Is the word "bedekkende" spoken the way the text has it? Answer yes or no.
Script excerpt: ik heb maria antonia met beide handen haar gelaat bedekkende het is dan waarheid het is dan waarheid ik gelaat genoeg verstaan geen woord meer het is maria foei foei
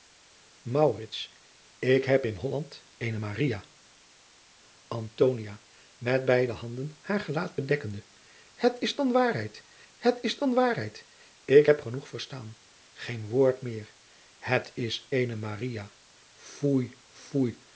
yes